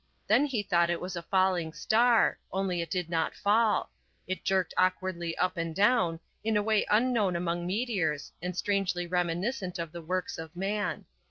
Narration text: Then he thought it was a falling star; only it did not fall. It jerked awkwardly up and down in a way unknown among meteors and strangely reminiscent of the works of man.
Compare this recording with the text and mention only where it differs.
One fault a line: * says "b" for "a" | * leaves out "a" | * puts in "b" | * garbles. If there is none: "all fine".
all fine